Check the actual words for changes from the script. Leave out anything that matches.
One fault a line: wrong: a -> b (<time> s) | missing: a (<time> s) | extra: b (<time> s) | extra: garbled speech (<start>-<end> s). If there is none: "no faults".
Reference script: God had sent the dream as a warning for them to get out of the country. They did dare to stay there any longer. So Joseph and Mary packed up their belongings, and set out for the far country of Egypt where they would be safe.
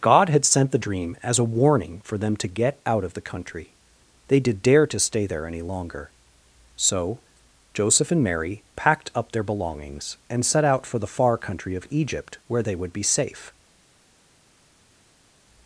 no faults